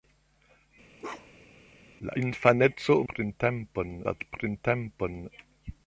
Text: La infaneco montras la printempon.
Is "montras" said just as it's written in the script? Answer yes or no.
no